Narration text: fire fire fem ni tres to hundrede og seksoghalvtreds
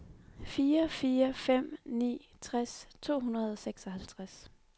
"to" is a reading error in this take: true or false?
false